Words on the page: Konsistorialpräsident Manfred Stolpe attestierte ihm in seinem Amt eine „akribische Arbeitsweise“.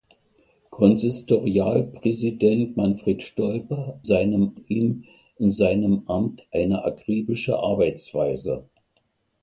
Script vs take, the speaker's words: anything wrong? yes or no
yes